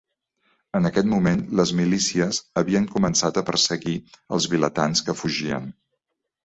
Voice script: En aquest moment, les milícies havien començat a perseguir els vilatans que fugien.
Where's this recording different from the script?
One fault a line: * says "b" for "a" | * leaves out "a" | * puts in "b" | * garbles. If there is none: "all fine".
all fine